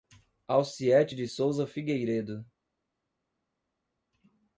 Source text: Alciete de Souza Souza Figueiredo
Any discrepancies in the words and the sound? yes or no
yes